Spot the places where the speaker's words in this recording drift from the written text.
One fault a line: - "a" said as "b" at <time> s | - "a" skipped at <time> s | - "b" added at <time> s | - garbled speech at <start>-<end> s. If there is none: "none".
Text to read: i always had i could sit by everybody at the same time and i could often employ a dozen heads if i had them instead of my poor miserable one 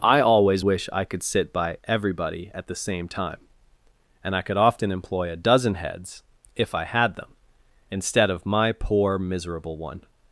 - "had" said as "wish" at 0.6 s